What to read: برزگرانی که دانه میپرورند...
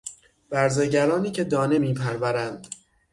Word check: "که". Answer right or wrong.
right